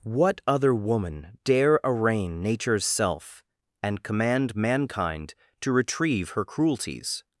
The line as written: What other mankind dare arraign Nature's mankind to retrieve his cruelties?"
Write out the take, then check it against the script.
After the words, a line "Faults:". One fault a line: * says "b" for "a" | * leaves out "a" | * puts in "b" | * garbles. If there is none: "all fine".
What other woman dare arraign Nature's self, and command mankind to retrieve her cruelties?"
Faults:
* says "woman" for "mankind"
* puts in "self and command"
* says "her" for "his"